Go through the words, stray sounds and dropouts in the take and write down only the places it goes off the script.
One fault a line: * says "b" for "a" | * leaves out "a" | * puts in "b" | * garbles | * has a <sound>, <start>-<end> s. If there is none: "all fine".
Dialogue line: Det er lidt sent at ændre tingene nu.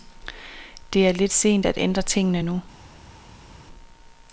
all fine